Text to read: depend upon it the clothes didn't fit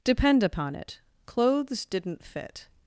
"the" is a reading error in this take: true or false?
true